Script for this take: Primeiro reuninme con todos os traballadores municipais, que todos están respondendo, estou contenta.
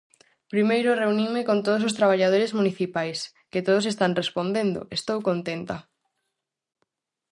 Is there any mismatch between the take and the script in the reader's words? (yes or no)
no